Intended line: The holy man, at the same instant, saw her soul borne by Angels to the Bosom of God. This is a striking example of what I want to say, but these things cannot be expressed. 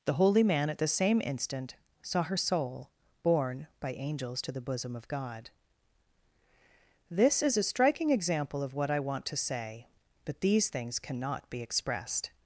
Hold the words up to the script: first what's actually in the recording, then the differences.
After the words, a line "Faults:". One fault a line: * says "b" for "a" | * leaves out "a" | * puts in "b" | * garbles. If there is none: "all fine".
The holy man, at the same instant, saw her soul borne by Angels to the Bosom of God. This is a striking example of what I want to say, but these things cannot be expressed.
Faults:
all fine